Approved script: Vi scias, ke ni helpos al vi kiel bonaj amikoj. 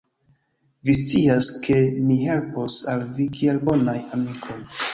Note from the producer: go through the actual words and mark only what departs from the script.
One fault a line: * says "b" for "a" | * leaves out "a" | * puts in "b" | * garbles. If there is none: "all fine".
all fine